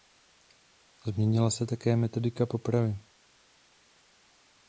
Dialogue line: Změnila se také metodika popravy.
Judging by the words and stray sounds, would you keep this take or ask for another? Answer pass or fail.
pass